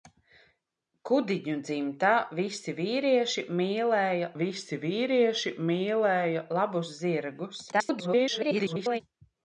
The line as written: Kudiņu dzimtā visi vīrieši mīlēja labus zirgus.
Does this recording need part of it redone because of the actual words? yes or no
yes